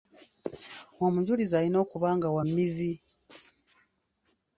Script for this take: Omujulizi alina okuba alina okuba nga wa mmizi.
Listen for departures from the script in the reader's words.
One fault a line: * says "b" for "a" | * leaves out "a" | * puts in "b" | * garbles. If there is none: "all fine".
* leaves out "alina okuba"